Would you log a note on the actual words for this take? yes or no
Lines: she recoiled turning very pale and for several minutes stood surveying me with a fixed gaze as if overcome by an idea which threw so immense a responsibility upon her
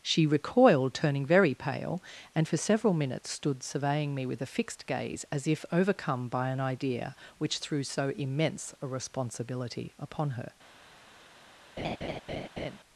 no